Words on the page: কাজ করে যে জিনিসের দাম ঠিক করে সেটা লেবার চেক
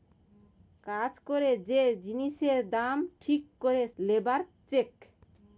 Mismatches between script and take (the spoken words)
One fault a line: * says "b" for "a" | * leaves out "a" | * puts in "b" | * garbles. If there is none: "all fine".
* leaves out "সেটা"